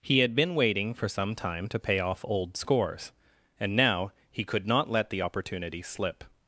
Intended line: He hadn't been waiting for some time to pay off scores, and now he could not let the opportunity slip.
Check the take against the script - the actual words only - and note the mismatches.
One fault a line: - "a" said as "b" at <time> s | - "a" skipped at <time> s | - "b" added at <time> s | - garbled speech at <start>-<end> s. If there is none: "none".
- "hadn't" said as "had" at 0.2 s
- "old" added at 2.2 s